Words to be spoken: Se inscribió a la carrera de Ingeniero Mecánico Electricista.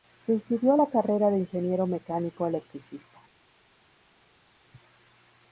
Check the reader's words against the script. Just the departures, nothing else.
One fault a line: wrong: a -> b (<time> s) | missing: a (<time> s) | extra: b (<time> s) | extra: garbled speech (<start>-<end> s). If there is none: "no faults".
no faults